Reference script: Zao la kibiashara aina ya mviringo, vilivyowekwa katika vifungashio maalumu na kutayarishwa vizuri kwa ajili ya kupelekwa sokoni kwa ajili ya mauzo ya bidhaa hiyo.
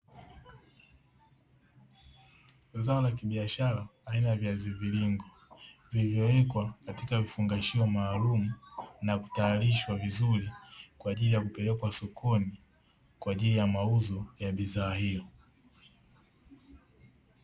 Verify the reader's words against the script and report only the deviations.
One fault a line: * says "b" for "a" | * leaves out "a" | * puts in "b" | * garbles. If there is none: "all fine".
* puts in "viazi"